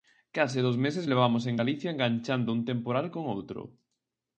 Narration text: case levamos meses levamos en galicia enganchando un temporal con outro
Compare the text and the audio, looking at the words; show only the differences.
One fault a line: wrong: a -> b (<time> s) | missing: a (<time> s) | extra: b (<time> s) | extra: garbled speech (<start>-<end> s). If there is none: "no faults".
wrong: levamos -> dous (0.7 s)